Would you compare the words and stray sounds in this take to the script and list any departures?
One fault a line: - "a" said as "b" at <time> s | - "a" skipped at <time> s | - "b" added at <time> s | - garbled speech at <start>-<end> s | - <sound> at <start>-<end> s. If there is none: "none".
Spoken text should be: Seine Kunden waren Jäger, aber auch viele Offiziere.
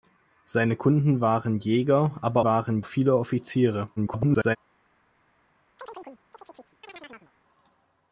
- "auch" said as "waren" at 2.4 s
- garbled speech at 4.0-4.6 s
- chirp at 5.8-7.3 s